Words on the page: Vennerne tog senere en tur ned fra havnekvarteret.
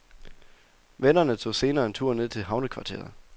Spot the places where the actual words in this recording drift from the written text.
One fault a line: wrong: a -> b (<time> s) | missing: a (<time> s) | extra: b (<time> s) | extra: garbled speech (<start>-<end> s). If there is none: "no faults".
wrong: fra -> til (2.3 s)